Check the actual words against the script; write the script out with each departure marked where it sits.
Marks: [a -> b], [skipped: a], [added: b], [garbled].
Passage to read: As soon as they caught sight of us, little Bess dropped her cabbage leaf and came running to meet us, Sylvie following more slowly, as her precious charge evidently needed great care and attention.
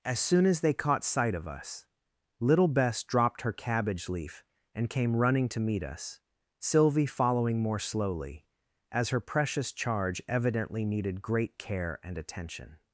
As soon as they caught sight of us, little Bess dropped her cabbage leaf and came running to meet us, Sylvie following more slowly, as her precious charge evidently needed great care and attention.